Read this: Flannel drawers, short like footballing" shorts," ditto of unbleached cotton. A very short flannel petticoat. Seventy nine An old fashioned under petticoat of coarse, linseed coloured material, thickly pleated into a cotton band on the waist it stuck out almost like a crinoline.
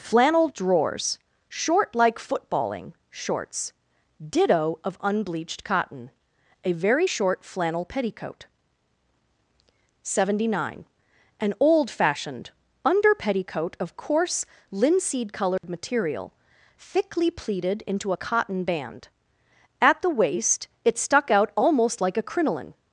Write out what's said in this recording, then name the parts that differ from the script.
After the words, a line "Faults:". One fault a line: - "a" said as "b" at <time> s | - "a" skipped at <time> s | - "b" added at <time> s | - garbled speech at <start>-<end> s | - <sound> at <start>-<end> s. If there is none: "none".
Flannel drawers, short like footballing" shorts," ditto of unbleached cotton. A very short flannel petticoat. Seventy nine An old fashioned under petticoat of coarse, linseed coloured material, thickly pleated into a cotton band at the waist it stuck out almost like a crinoline.
Faults:
- dropout at 15.6-15.6 s
- "on" said as "at" at 19.8 s